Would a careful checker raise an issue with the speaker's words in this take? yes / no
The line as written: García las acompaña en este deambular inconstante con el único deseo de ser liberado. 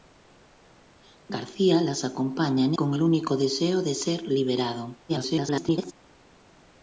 yes